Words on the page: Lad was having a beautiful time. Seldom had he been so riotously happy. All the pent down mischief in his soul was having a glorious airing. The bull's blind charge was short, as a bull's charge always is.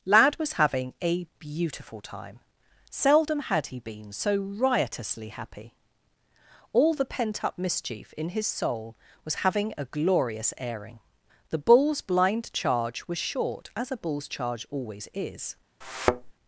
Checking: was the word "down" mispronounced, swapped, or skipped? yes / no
yes